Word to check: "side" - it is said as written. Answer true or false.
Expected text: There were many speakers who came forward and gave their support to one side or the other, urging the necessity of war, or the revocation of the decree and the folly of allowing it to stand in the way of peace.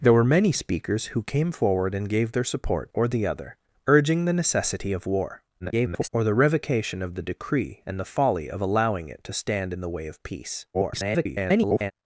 false